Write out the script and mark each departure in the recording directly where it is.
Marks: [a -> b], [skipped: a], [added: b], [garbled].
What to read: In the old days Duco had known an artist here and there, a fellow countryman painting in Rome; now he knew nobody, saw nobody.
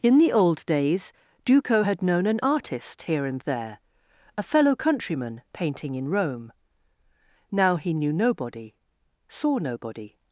In the old days Duco had known an artist here and there, a fellow countryman painting in Rome; now he knew nobody, saw nobody.